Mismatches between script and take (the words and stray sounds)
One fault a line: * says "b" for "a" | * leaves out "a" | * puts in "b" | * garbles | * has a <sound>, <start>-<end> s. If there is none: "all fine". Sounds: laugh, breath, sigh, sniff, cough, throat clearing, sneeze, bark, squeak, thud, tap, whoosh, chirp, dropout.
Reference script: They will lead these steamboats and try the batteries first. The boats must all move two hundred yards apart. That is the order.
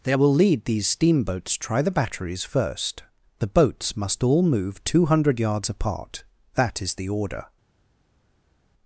* leaves out "and"